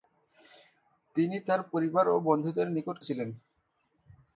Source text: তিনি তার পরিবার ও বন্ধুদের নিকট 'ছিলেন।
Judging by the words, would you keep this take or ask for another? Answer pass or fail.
pass